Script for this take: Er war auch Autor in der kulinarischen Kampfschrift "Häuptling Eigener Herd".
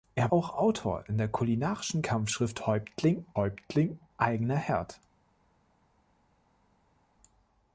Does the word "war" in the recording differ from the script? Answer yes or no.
yes